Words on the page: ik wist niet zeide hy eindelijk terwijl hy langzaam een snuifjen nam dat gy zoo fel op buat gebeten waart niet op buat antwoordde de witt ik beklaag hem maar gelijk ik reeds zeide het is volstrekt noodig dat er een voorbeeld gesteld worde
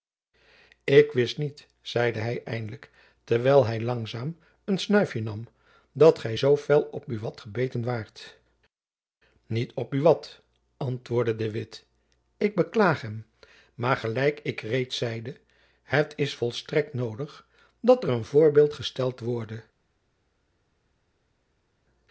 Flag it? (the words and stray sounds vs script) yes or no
no